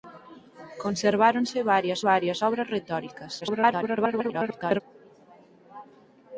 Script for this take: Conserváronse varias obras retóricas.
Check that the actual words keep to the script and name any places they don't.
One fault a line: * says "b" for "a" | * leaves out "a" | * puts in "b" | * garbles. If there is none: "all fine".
* puts in "varias"
* garbles